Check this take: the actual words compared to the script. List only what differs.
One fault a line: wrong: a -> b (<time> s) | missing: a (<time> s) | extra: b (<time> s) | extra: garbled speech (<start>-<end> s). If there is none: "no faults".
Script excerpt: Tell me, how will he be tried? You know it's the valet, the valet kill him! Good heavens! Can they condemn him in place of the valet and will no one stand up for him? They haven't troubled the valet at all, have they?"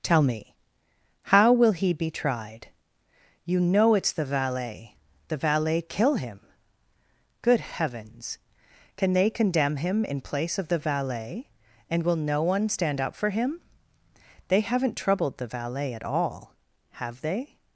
no faults